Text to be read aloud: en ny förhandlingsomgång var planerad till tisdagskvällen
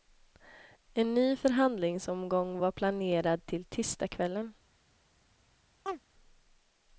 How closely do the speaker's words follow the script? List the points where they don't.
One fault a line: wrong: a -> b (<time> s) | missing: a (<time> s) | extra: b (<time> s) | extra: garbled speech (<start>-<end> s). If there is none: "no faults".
no faults